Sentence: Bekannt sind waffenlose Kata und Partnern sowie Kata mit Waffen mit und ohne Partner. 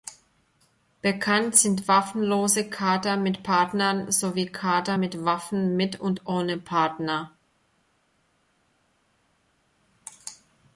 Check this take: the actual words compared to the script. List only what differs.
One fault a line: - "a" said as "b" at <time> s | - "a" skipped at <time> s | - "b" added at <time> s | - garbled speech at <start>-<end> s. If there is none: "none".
- "und" said as "mit" at 3.2 s